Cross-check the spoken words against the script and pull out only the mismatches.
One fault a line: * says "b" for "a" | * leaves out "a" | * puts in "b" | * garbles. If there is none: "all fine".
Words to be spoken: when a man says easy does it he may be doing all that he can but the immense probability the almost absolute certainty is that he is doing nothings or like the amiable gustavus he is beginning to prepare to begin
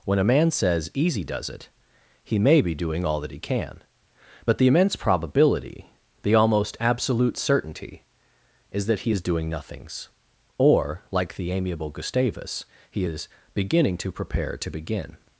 all fine